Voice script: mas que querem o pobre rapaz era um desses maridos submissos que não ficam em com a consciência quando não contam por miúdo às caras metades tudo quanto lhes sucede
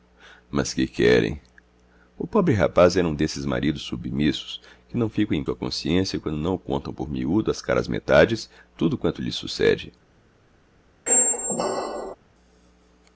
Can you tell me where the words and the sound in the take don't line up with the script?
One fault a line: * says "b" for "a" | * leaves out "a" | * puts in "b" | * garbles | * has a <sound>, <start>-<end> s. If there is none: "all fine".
* has a squeak, 11.1-12.2 s